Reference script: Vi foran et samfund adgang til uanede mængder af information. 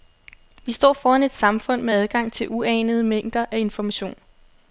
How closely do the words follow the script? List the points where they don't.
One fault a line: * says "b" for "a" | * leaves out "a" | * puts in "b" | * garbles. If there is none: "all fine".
* puts in "står"
* puts in "med"